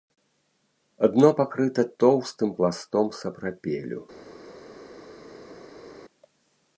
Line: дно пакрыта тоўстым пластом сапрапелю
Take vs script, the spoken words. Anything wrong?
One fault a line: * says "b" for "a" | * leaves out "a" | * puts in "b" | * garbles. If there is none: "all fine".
all fine